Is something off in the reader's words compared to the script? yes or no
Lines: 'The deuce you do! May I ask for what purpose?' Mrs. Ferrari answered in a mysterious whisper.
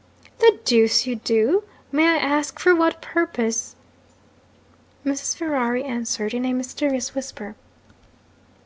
no